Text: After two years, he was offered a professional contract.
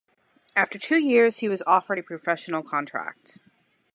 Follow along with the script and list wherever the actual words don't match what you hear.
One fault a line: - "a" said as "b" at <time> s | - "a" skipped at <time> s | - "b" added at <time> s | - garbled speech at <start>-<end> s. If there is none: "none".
none